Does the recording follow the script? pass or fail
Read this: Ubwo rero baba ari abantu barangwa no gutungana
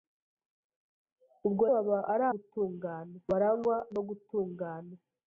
fail